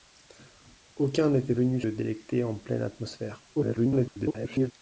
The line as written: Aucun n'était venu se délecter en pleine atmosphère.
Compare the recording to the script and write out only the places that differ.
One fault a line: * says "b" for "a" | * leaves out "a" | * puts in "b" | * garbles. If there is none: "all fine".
* leaves out "se"
* garbles